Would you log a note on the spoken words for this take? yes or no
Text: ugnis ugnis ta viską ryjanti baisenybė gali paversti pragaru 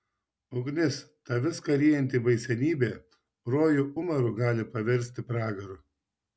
yes